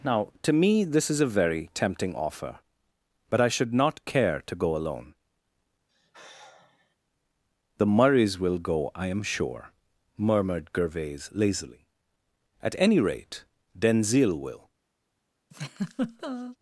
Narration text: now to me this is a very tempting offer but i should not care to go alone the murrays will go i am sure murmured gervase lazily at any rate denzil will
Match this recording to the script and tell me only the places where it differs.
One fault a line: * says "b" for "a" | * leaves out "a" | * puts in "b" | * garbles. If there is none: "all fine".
all fine